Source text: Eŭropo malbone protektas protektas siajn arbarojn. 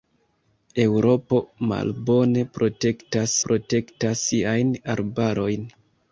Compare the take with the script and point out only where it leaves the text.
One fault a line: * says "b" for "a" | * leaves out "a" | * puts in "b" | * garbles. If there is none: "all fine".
all fine